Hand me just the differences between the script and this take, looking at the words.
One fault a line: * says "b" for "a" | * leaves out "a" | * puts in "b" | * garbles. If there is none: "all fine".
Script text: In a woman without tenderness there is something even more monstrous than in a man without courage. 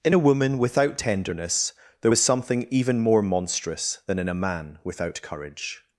* says "was" for "is"